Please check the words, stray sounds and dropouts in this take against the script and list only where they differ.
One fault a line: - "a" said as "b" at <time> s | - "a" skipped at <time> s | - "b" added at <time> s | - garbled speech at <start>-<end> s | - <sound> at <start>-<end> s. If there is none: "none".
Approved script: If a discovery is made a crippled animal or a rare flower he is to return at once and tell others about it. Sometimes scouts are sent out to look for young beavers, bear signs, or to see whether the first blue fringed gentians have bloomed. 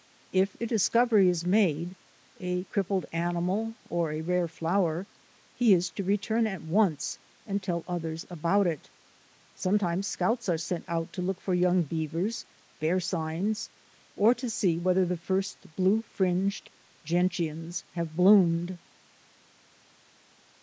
none